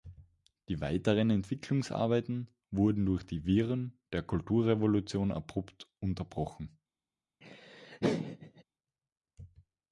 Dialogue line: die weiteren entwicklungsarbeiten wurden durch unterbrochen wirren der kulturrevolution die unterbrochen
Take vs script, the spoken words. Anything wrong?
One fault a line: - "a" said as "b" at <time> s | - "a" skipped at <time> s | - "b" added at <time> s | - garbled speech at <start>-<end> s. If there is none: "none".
- "unterbrochen" said as "die" at 3.2 s
- "die" said as "abrupt" at 5.3 s